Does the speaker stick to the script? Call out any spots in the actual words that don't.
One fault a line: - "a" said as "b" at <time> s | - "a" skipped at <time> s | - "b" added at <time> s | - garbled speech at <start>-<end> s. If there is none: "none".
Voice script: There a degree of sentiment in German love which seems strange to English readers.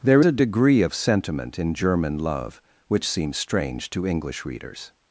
none